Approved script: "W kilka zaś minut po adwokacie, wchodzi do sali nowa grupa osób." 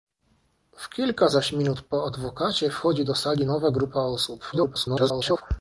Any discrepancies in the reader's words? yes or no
yes